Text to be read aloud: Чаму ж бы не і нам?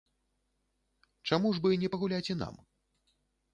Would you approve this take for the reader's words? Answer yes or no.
no